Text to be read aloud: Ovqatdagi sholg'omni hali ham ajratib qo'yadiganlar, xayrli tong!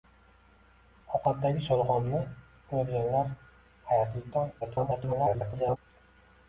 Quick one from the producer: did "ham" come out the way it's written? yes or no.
no